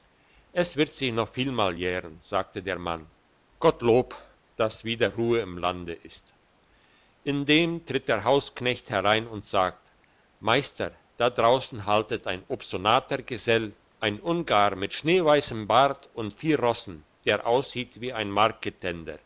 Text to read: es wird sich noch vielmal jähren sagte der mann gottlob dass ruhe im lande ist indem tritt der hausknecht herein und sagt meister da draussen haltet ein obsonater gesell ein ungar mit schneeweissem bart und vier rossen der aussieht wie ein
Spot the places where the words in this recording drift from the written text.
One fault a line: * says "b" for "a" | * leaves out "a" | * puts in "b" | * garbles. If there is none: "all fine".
* puts in "wieder"